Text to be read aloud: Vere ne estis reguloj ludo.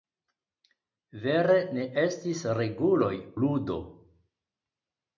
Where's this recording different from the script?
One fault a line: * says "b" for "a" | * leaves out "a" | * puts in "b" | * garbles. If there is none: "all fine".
all fine